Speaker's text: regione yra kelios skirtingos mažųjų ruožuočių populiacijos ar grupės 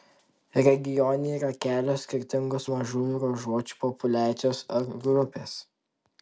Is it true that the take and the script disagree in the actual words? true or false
false